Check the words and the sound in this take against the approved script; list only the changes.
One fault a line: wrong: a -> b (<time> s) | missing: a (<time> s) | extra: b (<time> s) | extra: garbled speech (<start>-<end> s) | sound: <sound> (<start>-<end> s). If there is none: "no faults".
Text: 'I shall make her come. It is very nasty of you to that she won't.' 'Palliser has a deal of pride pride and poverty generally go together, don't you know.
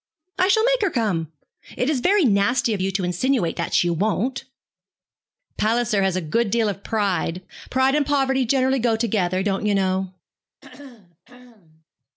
extra: insinuate (3.0 s)
extra: good (6.2 s)
sound: throat clearing (10.6-11.8 s)